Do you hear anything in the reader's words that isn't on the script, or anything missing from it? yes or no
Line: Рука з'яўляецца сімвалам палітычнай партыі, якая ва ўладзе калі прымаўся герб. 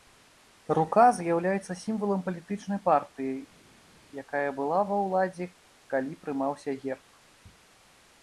yes